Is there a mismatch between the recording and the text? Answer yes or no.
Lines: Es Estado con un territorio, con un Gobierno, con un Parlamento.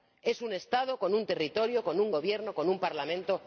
yes